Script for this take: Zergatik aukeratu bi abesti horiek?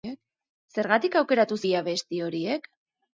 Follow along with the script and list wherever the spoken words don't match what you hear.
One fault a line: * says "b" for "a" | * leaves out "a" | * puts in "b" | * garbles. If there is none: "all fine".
all fine